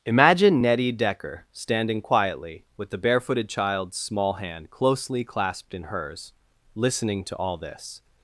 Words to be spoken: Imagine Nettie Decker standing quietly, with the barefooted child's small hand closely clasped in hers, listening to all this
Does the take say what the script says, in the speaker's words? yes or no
yes